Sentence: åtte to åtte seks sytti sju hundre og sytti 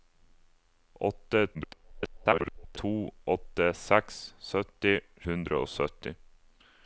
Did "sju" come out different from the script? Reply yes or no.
yes